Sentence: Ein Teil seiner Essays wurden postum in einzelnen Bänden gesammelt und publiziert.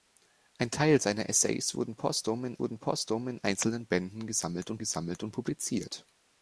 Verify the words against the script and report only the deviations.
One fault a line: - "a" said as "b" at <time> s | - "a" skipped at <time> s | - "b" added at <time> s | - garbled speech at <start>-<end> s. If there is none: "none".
- "wurden postum in" added at 2.6 s
- "gesammelt und" added at 4.8 s